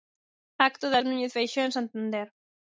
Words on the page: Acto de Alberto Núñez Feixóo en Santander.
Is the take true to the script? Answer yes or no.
no